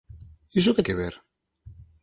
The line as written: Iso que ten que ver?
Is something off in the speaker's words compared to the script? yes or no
yes